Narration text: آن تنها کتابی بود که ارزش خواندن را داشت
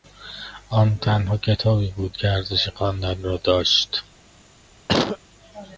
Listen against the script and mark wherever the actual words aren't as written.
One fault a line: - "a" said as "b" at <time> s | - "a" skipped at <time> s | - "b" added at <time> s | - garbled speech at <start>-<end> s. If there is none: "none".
none